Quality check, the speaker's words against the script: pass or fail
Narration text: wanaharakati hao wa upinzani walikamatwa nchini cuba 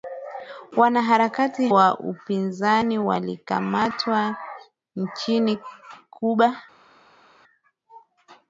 fail